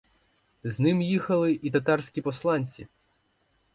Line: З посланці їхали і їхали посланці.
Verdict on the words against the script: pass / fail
fail